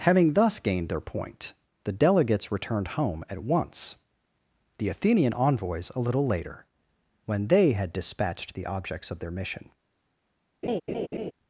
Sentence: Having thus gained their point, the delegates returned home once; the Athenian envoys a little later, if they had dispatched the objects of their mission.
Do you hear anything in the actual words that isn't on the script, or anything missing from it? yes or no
yes